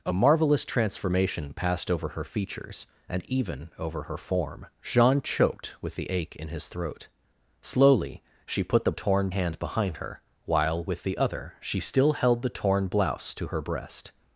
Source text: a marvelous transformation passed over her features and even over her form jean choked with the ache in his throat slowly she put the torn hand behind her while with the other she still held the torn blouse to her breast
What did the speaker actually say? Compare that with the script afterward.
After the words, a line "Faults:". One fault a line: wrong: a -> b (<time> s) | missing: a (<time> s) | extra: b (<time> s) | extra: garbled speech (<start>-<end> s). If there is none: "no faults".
a marvelous transformation passed over her features and even over her form jean choked with the ache in his throat slowly she put the torn hand behind her while with the other she still held the torn blouse to her breast
Faults:
no faults